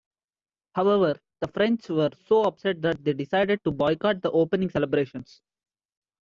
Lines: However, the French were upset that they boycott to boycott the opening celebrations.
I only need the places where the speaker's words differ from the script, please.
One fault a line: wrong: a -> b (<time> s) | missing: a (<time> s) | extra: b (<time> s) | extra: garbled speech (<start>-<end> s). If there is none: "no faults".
extra: so (2.2 s)
wrong: boycott -> decided (3.1 s)